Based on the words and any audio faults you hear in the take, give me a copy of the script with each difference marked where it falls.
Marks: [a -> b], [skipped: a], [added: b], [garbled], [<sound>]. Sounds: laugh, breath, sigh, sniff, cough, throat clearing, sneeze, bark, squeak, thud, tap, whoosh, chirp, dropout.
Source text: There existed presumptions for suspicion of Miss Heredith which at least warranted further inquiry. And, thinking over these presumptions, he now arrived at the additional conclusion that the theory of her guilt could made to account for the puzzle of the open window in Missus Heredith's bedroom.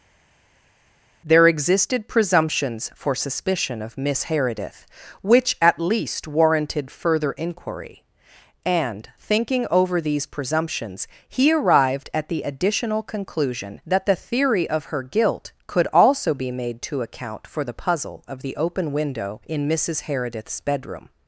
There existed presumptions for suspicion of Miss Heredith which at least warranted further inquiry. And, thinking over these presumptions, he [skipped: now] arrived at the additional conclusion that the theory of her guilt could [added: also be] made to account for the puzzle of the open window in Missus Heredith's bedroom.